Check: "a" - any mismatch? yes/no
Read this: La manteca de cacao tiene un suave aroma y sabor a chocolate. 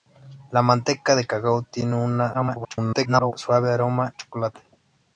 yes